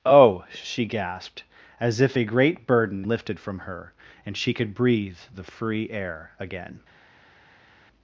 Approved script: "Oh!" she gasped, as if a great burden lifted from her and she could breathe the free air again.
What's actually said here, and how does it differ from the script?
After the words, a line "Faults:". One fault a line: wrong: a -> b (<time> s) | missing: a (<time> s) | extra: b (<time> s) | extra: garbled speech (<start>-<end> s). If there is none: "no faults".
"Oh!" she gasped, as if a great burden lifted from her and she could breathe the free air again.
Faults:
no faults